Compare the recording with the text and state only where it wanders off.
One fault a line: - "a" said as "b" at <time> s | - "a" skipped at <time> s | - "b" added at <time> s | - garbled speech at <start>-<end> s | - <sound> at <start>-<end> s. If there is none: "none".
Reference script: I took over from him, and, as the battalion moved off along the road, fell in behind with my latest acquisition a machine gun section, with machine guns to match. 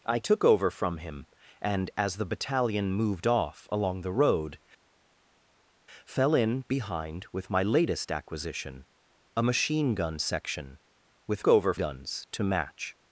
- "machine" said as "over" at 11.5 s